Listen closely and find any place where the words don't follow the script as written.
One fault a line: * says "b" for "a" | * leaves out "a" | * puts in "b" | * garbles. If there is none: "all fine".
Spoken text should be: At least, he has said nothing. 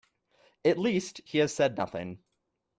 all fine